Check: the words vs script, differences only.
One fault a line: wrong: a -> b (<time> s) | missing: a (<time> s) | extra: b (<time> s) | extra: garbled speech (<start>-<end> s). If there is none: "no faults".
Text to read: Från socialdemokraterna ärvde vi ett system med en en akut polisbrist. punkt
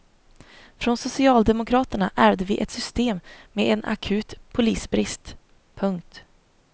missing: en (3.8 s)